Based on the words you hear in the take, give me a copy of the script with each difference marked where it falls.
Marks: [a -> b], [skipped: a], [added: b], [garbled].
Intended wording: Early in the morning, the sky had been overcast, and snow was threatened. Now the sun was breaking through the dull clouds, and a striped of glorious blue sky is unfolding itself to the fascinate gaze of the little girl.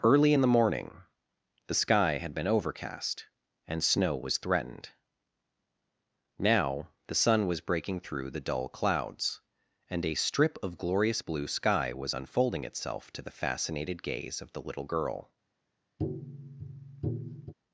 Early in the morning, the sky had been overcast, and snow was threatened. Now the sun was breaking through the dull clouds, and a [striped -> strip] of glorious blue sky [is -> was] unfolding itself to the [fascinate -> fascinated] gaze of the little girl.